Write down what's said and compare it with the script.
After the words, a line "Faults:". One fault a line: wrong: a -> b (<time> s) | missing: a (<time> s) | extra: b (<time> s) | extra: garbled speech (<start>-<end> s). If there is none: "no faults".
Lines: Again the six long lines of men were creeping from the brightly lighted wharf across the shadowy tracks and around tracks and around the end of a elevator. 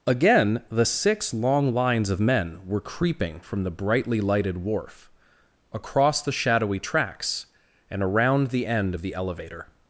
Again the six long lines of men were creeping from the brightly lighted wharf across the shadowy tracks and around the end of the elevator.
Faults:
missing: tracks and around (8.5 s)
wrong: a -> the (9.0 s)